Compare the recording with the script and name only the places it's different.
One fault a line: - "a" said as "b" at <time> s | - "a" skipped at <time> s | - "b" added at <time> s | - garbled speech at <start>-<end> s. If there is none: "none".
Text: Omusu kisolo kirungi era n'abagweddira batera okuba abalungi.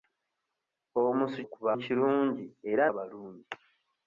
- "kisolo" said as "okuba" at 1.4 s
- "n'abagweddira batera okuba" skipped at 2.8 s